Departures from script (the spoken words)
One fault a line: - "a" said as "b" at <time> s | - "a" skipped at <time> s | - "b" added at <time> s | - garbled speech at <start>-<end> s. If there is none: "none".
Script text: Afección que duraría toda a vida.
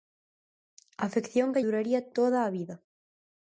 none